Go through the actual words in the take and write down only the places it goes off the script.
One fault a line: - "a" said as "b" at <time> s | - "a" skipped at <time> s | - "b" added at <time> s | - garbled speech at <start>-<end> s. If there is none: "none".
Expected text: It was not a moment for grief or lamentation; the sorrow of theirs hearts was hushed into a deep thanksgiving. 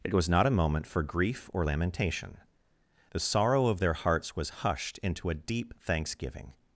- "theirs" said as "their" at 3.8 s